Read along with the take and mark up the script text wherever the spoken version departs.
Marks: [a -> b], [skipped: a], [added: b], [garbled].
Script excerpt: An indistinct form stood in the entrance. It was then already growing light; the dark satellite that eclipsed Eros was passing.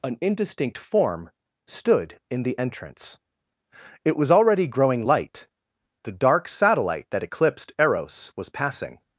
An indistinct form stood in the entrance. It was [skipped: then] already growing light; the dark satellite that eclipsed Eros was passing.